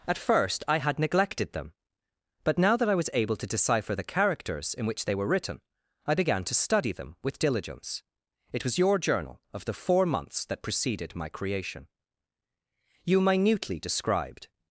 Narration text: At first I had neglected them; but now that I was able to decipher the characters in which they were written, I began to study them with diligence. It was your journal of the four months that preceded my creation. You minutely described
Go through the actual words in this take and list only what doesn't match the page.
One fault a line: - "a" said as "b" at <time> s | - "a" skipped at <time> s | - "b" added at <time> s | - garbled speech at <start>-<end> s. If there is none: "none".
none